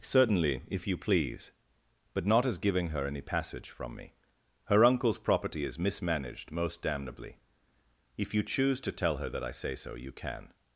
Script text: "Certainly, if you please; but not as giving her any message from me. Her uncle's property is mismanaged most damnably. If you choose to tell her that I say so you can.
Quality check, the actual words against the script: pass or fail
fail